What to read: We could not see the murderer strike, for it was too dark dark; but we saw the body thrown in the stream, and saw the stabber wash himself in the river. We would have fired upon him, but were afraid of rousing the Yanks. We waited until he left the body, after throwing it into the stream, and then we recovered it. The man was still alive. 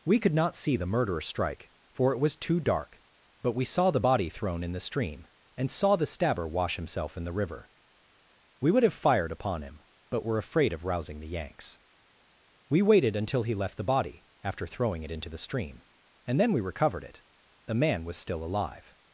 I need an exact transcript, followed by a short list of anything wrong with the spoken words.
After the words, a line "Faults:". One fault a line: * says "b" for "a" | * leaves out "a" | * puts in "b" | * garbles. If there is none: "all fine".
We could not see the murderer strike, for it was too dark; but we saw the body thrown in the stream, and saw the stabber wash himself in the river. We would have fired upon him, but were afraid of rousing the Yanks. We waited until he left the body, after throwing it into the stream, and then we recovered it. The man was still alive.
Faults:
* leaves out "dark"